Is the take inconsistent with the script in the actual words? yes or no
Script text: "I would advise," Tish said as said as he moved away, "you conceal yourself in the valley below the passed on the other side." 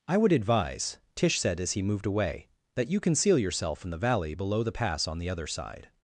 yes